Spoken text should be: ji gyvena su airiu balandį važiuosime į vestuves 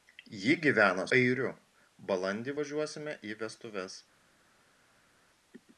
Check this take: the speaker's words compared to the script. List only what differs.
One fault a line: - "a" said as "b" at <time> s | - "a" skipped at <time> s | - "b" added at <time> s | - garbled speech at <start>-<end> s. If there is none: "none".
- "su" skipped at 1.1 s